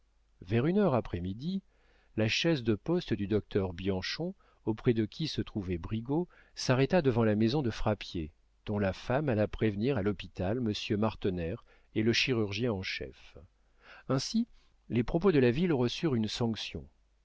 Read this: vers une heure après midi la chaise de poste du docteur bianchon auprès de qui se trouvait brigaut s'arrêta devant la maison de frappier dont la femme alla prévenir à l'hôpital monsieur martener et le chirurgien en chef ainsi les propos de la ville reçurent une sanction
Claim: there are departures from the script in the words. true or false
false